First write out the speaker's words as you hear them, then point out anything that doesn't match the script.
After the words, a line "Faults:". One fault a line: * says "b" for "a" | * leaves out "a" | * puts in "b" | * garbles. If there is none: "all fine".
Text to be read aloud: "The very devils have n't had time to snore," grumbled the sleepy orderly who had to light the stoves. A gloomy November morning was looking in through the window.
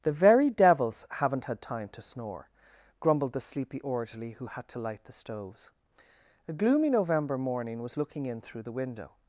"The very devils have n't had time to snore," grumbled the sleepy orderly who had to light the stoves. A gloomy November morning was looking in through the window.
Faults:
all fine